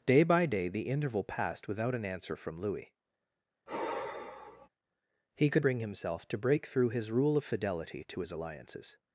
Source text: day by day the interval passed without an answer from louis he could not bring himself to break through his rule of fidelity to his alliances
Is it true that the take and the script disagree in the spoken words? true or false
true